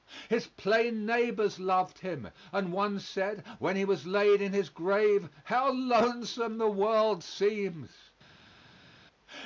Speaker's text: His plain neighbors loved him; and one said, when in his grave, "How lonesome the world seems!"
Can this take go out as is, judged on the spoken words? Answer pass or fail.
fail